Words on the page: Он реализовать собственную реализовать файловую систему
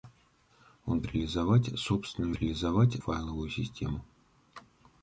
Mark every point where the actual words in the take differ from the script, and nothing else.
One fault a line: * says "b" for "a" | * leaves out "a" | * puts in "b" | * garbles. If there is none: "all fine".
all fine